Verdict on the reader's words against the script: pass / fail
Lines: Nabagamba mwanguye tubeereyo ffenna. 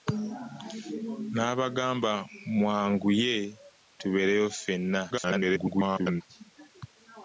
fail